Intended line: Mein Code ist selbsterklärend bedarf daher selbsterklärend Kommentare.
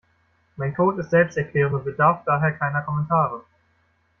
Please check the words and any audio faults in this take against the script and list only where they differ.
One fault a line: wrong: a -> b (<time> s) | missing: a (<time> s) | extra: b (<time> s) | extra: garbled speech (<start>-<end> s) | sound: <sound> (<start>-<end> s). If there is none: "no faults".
extra: und (1.7 s)
wrong: selbsterklärend -> keiner (2.5 s)